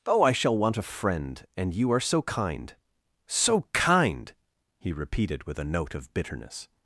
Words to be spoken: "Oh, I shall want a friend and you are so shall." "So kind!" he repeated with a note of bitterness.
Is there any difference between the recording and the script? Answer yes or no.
yes